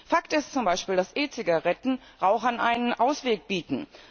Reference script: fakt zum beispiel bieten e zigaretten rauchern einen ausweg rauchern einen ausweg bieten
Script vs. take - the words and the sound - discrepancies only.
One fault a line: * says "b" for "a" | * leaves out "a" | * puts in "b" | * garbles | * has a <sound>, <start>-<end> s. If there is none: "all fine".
* puts in "ist"
* says "dass" for "bieten"
* leaves out "rauchern einen ausweg"